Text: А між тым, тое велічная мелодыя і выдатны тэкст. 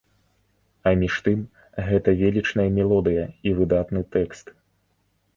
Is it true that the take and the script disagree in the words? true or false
true